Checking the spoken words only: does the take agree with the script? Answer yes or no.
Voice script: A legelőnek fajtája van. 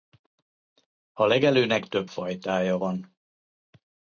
no